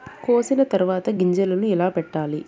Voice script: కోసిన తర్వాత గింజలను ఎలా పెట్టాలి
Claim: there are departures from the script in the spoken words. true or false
false